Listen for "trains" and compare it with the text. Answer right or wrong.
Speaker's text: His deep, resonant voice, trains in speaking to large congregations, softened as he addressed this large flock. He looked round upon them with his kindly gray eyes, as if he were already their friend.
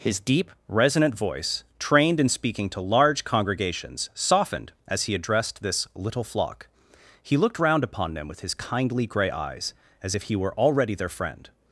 wrong